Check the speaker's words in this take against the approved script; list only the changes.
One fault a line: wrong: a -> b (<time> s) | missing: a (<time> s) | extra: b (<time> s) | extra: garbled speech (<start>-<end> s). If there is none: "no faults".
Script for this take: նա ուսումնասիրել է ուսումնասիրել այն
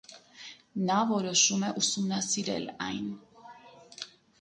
wrong: ուսումնասիրել -> որոշում (1.1 s)